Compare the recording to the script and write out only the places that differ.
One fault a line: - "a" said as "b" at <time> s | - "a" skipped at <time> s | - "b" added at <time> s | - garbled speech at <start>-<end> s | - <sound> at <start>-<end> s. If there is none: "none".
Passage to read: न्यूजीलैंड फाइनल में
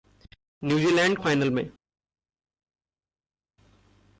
none